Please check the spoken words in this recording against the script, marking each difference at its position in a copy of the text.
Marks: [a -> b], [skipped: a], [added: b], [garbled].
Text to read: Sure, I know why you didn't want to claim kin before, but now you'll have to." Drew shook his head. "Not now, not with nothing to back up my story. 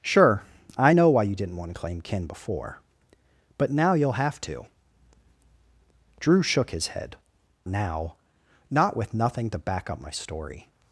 Sure, I know why you didn't want to claim kin before, but now you'll have to." Drew shook his head. [skipped: "Not] now, not with nothing to back up my story.